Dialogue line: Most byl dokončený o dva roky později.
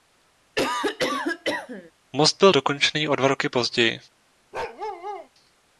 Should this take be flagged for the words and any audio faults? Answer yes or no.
yes